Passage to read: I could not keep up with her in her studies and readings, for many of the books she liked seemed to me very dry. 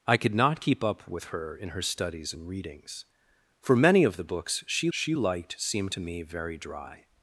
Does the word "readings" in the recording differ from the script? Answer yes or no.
no